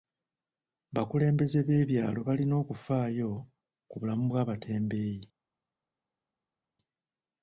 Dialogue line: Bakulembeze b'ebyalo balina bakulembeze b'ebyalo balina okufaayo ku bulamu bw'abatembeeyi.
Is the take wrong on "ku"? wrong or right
right